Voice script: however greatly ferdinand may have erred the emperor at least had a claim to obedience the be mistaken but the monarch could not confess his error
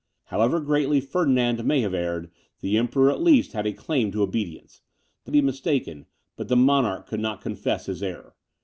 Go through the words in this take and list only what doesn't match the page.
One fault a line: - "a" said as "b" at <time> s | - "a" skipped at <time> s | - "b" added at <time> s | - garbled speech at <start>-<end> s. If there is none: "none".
none